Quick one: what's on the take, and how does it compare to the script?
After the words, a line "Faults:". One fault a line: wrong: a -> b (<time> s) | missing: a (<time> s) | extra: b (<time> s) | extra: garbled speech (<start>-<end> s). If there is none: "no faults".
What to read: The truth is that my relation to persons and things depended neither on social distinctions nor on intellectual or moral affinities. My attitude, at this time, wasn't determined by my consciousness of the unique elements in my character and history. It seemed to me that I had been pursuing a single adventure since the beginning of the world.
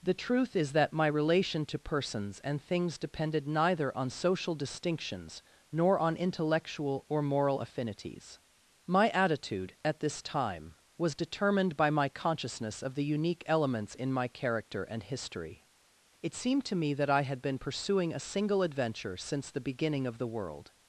The truth is that my relation to persons and things depended neither on social distinctions nor on intellectual or moral affinities. My attitude, at this time, was determined by my consciousness of the unique elements in my character and history. It seemed to me that I had been pursuing a single adventure since the beginning of the world.
Faults:
wrong: wasn't -> was (11.0 s)